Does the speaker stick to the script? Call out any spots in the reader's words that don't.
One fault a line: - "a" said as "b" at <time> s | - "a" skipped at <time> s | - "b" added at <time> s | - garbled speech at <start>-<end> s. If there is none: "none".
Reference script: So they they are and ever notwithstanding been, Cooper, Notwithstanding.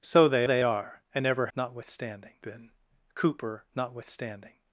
none